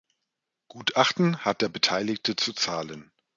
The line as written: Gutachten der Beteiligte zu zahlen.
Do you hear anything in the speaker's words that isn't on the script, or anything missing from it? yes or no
yes